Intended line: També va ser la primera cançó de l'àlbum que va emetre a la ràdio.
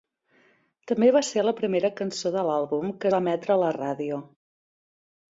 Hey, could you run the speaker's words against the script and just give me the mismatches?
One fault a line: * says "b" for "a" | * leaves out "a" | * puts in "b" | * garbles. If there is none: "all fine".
all fine